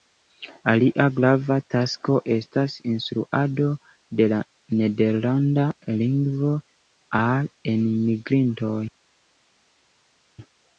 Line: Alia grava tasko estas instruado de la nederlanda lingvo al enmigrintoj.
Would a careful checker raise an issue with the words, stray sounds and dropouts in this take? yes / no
no